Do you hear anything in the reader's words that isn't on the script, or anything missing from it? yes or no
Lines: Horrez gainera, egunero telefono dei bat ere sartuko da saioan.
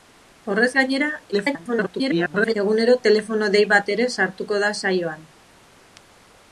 yes